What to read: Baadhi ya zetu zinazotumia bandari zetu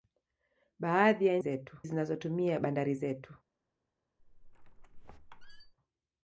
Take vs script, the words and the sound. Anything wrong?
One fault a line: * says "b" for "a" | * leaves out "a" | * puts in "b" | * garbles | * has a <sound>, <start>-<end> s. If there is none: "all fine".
* has a squeak, 4.2-5.7 s